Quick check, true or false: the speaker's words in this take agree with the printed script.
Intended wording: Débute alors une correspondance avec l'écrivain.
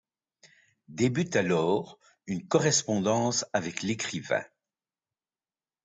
true